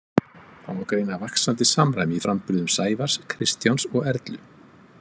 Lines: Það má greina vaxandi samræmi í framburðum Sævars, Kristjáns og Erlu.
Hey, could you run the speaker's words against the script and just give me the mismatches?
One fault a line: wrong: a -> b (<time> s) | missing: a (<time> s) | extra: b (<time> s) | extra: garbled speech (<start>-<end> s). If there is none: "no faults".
no faults